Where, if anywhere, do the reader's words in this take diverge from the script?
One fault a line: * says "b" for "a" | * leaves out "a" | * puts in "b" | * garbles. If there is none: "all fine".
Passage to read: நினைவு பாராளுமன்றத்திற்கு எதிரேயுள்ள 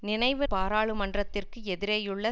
all fine